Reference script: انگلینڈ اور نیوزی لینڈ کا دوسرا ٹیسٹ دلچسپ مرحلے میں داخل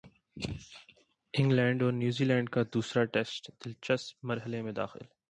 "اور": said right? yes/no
yes